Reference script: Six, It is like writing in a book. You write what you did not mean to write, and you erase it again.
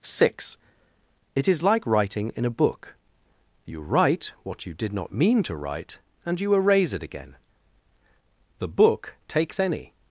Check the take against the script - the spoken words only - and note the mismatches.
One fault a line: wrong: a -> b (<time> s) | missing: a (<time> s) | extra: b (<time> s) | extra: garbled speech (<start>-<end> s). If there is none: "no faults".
extra: The book takes any (8.6 s)